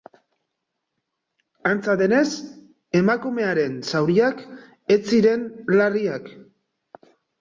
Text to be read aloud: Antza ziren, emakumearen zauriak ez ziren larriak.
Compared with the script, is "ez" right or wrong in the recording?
right